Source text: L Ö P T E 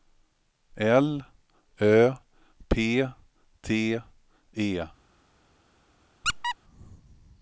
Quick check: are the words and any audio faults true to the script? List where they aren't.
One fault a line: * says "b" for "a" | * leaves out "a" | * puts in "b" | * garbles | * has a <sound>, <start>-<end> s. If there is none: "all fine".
* has a squeak, 6.2-6.6 s